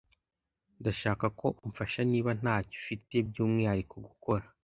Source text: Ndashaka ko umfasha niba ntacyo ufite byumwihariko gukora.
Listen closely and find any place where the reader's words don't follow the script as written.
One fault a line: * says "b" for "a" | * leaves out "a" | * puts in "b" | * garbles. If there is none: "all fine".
all fine